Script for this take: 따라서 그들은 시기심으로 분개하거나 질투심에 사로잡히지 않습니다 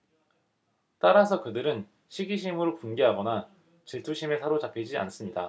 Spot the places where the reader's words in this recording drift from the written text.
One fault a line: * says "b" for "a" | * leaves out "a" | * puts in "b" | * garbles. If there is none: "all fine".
all fine